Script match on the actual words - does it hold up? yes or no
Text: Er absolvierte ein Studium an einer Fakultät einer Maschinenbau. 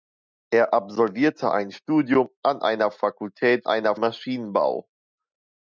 yes